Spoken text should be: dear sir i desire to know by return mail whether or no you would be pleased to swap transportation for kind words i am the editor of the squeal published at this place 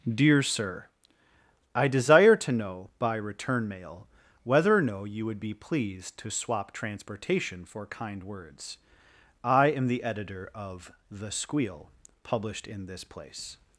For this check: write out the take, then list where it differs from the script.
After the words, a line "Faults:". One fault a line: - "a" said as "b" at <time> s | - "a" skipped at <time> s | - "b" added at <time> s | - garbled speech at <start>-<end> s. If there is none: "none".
dear sir i desire to know by return mail whether or no you would be pleased to swap transportation for kind words i am the editor of the squeal published in this place
Faults:
- "at" said as "in" at 12.7 s